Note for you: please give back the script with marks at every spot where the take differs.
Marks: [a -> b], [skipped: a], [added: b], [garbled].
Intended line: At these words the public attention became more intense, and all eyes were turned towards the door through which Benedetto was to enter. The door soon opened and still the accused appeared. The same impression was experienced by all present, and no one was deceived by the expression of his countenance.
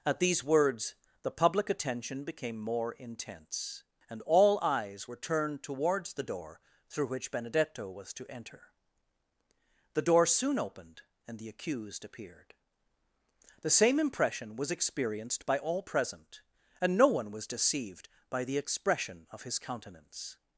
At these words the public attention became more intense, and all eyes were turned towards the door through which Benedetto was to enter. The door soon opened and [skipped: still] the accused appeared. The same impression was experienced by all present, and no one was deceived by the expression of his countenance.